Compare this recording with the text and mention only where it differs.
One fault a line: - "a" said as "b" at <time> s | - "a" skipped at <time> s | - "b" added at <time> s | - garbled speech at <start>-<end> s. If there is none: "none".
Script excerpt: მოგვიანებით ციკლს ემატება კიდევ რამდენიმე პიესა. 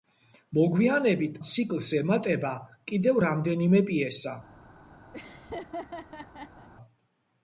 none